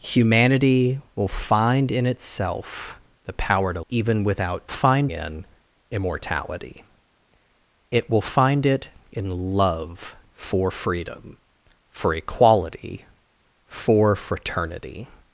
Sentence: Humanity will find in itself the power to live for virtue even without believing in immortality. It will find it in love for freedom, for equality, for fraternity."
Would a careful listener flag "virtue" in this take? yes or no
yes